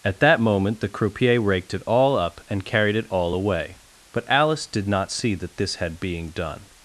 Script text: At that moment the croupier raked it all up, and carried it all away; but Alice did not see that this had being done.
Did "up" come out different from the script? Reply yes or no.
no